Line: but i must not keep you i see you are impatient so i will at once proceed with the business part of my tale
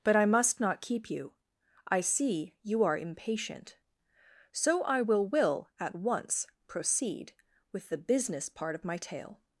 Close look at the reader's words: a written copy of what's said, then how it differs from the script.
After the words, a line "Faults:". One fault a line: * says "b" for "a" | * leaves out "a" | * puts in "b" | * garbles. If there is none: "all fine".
but i must not keep you i see you are impatient so i will will at once proceed with the business part of my tale
Faults:
* puts in "will"